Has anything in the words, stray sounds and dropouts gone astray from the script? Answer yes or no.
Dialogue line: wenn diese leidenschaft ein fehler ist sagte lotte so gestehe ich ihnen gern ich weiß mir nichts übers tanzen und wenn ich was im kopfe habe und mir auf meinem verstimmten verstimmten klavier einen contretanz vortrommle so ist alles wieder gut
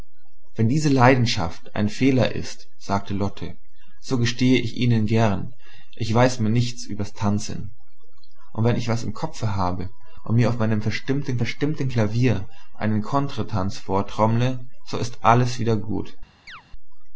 yes